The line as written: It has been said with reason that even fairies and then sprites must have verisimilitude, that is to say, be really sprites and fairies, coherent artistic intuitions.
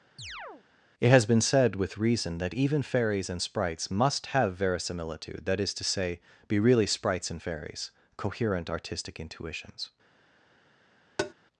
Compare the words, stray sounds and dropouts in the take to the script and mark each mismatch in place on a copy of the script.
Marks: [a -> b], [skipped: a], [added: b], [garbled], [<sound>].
[chirp] It has been said with reason that even fairies and [skipped: then] sprites must have verisimilitude, that is to say, be really sprites and fairies, coherent artistic intuitions. [tap]